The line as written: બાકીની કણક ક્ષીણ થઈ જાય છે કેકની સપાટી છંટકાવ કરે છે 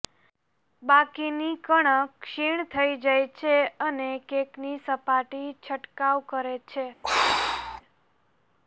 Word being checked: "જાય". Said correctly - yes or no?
yes